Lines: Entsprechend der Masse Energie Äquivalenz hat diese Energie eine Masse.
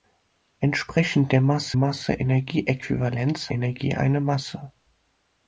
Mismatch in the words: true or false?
true